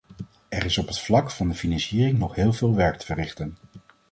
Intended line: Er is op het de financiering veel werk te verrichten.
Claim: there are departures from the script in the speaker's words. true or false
true